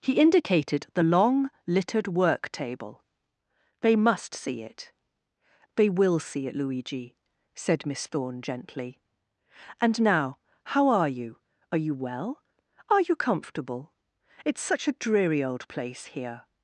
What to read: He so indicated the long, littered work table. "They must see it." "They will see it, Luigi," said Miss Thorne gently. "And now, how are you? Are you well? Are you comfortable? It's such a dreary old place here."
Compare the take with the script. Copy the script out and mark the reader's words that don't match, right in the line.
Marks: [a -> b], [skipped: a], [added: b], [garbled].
He [skipped: so] indicated the long, littered work table. "They must see it." "They will see it, Luigi," said Miss Thorne gently. "And now, how are you? Are you well? Are you comfortable? It's such a dreary old place here."